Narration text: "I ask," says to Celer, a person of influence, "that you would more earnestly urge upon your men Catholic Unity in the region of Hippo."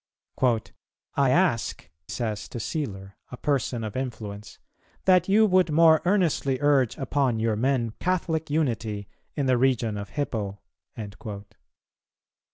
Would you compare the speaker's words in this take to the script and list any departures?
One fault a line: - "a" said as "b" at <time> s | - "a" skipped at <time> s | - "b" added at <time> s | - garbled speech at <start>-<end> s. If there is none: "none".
none